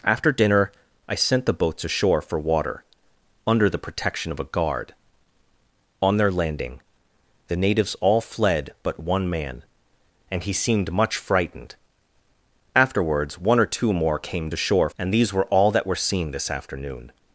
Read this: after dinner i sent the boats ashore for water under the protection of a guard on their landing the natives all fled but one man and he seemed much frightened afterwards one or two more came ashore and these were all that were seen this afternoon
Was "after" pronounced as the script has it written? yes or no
yes